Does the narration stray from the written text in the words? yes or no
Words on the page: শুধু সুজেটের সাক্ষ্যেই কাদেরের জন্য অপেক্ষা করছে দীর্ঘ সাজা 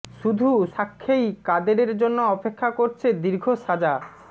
yes